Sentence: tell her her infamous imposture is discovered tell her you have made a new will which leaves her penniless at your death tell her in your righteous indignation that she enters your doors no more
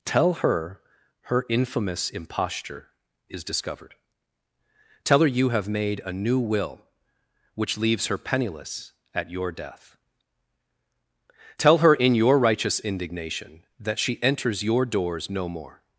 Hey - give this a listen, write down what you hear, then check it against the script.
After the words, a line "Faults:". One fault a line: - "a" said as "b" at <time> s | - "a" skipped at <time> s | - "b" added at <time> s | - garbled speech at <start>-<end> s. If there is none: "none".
tell her her infamous imposture is discovered tell her you have made a new will which leaves her penniless at your death tell her in your righteous indignation that she enters your doors no more
Faults:
none